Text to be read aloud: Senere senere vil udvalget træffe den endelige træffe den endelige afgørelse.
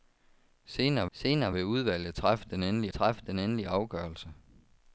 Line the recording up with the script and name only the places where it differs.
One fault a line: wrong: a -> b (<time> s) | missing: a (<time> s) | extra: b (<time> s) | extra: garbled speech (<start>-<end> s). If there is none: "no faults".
no faults